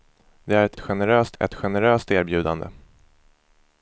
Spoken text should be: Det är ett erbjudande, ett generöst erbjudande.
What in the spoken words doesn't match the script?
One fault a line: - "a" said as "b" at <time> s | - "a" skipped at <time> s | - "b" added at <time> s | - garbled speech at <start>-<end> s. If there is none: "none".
- "erbjudande" said as "generöst" at 0.8 s